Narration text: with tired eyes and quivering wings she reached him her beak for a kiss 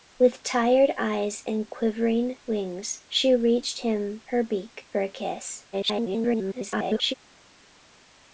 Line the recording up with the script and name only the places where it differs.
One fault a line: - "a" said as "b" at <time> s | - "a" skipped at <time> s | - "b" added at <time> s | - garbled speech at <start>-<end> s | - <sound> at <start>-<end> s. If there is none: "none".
- garbled speech at 5.7-7.1 s